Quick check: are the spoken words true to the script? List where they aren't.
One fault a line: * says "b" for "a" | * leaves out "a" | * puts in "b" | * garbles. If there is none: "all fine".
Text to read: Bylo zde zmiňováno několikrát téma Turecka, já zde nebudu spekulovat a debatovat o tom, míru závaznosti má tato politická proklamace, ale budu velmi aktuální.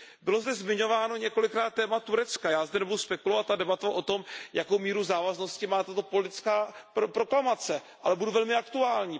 * puts in "jakou"